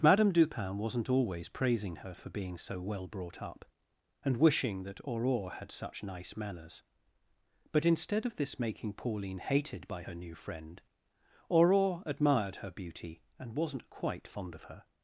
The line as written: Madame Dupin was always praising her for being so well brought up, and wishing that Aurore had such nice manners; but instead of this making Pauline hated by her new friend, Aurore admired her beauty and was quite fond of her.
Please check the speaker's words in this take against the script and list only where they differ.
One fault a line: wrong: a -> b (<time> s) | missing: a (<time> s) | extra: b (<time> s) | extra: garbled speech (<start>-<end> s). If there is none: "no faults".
wrong: was -> wasn't (0.8 s)
wrong: was -> wasn't (13.6 s)